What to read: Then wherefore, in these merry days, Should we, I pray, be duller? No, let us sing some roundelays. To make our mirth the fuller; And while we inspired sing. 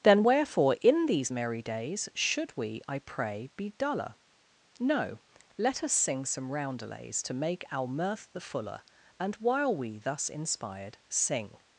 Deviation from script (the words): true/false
true